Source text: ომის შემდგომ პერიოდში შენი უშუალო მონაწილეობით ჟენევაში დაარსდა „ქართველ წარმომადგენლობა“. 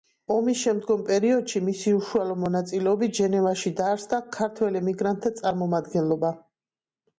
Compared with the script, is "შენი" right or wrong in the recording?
wrong